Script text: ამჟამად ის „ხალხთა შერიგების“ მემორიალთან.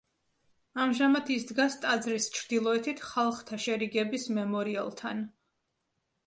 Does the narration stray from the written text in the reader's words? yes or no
yes